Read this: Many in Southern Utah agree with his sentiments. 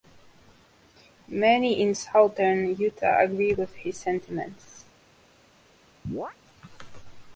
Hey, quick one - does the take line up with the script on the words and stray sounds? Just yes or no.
no